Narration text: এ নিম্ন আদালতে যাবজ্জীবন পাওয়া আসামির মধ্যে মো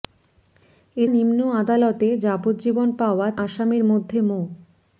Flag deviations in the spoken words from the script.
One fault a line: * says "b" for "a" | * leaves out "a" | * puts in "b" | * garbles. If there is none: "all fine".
all fine